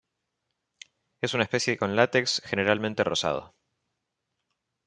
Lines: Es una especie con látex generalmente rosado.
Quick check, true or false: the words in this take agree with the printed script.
true